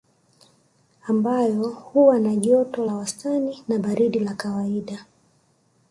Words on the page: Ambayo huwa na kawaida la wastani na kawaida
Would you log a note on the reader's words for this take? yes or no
yes